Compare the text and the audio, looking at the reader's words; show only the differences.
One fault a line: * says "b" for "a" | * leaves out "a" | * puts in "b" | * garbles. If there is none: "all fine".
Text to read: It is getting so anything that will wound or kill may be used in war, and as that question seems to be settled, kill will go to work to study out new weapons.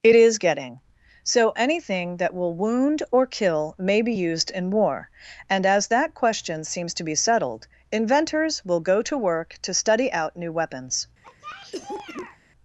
* says "inventors" for "kill"